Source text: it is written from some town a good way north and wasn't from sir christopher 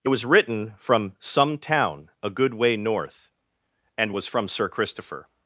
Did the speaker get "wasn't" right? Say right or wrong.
wrong